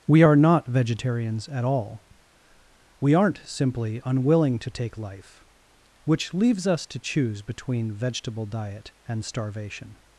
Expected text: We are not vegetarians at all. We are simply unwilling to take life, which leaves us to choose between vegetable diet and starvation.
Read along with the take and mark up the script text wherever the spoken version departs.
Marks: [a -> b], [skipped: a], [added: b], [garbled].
We are not vegetarians at all. We [are -> aren't] simply unwilling to take life, which leaves us to choose between vegetable diet and starvation.